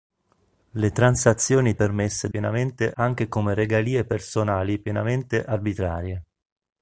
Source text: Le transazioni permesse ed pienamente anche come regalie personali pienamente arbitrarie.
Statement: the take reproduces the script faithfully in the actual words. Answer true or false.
true